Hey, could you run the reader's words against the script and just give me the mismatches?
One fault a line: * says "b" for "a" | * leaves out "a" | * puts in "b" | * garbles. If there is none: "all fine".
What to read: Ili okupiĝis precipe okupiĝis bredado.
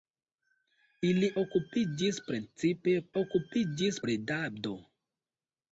all fine